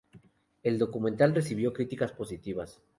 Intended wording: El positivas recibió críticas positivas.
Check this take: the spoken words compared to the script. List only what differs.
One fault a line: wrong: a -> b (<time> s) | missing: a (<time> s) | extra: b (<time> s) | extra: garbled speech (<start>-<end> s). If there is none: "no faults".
wrong: positivas -> documental (0.8 s)